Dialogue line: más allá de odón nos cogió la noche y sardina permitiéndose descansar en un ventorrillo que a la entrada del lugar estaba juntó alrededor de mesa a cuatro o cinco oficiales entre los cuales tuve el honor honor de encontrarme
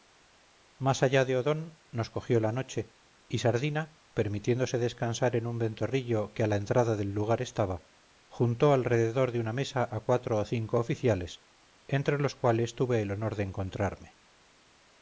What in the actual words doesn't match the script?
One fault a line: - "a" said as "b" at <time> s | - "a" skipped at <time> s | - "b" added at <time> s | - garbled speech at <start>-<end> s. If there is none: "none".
- "una" added at 9.4 s
- "honor" skipped at 13.4 s